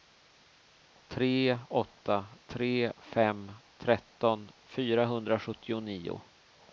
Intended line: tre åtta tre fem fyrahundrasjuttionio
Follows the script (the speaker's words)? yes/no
no